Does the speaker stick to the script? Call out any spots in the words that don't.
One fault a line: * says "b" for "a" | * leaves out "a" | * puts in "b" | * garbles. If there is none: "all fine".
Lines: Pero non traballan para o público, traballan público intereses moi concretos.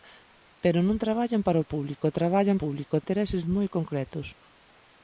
all fine